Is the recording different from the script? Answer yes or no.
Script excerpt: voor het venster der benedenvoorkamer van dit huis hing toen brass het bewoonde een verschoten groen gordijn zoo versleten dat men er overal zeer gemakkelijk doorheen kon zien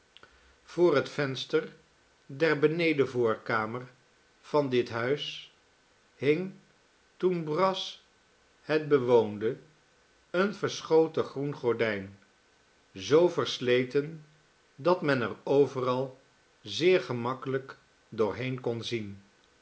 no